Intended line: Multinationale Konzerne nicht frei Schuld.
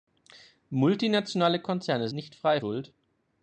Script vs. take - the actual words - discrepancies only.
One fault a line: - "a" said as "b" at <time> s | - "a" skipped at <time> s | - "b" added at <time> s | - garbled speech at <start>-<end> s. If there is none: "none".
none